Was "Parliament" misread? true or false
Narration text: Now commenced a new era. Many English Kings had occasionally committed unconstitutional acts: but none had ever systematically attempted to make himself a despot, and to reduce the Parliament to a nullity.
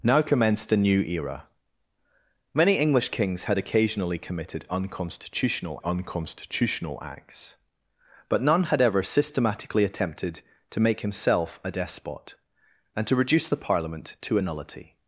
false